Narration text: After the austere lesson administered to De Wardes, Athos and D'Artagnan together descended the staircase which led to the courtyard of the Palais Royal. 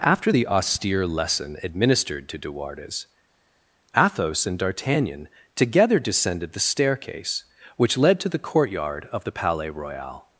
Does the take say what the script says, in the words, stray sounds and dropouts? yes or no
yes